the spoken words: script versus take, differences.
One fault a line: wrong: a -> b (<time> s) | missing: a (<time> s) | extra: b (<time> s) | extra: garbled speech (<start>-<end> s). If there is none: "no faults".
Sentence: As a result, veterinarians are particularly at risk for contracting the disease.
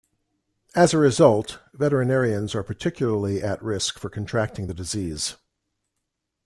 no faults